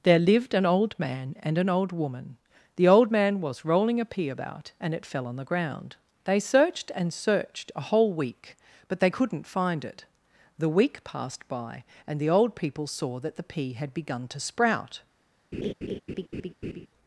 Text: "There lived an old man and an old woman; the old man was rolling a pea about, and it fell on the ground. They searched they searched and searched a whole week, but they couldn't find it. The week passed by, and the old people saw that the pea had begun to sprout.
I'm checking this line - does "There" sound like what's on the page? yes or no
yes